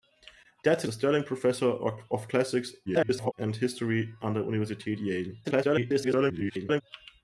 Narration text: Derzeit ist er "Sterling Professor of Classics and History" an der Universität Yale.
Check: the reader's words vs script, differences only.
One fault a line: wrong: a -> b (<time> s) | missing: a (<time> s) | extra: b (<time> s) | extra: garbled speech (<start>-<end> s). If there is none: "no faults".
missing: ist (0.9 s)
extra: garbled speech (2.9-3.3 s)
extra: garbled speech (5.4-6.8 s)